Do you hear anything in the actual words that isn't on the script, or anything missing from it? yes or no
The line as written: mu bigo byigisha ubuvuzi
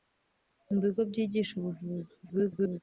yes